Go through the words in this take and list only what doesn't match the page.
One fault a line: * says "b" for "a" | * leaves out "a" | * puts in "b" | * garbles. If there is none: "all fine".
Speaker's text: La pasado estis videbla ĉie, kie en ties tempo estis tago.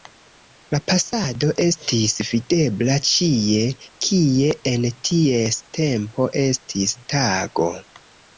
all fine